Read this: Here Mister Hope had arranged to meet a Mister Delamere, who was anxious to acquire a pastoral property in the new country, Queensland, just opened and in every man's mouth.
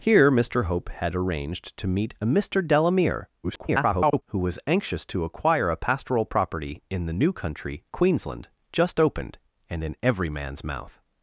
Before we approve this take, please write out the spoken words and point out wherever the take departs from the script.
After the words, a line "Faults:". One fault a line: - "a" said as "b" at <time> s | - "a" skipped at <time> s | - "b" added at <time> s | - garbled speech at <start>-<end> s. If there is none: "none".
Here Mister Hope had arranged to meet a Mister Delamere, [garbled] who was anxious to acquire a pastoral property in the new country, Queensland, just opened and in every man's mouth.
Faults:
- garbled speech at 3.4-4.2 s